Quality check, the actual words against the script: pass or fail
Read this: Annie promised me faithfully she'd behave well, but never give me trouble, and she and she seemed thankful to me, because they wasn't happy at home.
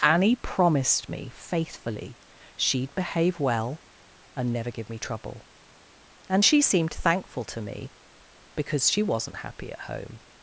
fail